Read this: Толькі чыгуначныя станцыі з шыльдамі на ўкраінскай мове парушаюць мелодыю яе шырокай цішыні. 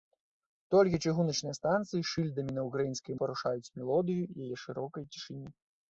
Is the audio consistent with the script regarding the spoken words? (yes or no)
no